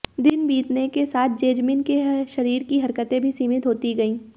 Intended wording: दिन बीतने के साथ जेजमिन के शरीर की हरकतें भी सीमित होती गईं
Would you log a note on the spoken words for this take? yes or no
no